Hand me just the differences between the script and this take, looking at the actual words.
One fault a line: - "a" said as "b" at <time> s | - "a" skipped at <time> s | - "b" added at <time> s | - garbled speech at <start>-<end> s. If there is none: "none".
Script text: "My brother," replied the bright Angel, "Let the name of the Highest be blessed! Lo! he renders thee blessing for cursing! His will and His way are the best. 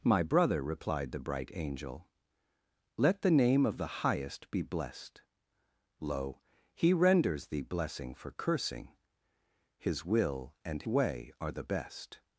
- "His" skipped at 10.8 s